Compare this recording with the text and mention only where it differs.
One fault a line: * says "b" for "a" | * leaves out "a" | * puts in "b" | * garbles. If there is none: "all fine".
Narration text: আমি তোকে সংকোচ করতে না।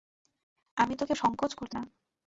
all fine